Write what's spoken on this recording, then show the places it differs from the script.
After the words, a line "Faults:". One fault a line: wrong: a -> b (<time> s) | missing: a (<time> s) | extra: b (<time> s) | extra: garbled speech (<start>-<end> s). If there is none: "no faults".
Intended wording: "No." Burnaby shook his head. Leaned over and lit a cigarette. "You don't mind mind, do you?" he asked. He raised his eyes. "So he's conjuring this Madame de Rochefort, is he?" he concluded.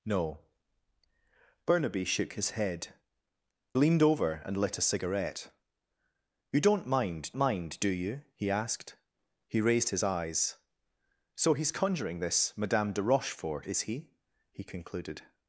"No." Burnaby shook his head. Leaned over and lit a cigarette. "You don't mind mind, do you?" he asked. He raised his eyes. "So he's conjuring this Madame de Rochefort, is he?" he concluded.
Faults:
no faults